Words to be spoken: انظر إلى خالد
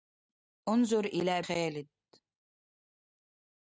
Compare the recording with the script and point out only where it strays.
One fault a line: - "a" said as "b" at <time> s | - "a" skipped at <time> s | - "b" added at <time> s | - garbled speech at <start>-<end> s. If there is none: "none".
none